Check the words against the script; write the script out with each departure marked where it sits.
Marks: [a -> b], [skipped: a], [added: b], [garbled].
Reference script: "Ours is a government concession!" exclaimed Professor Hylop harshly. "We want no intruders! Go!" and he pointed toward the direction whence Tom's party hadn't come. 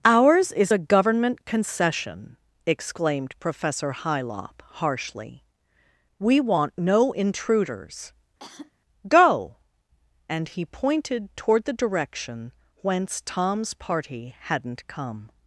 "Ours is a government concession!" exclaimed Professor Hylop harshly. "We want no intruders! Go!" and he pointed toward the direction whence Tom's party hadn't come.